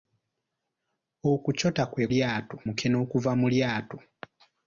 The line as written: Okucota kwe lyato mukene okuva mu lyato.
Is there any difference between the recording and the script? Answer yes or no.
no